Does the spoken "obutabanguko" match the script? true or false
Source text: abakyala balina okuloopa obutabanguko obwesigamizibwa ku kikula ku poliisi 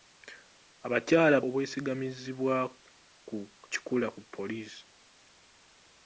false